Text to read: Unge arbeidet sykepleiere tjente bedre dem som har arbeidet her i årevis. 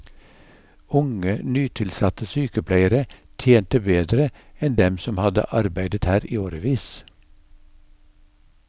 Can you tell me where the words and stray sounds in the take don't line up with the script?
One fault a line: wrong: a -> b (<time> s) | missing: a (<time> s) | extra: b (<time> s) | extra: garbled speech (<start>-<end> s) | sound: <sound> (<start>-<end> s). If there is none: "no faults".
wrong: arbeidet -> nytilsatte (1.4 s)
extra: enn (4.7 s)
wrong: har -> hadde (5.2 s)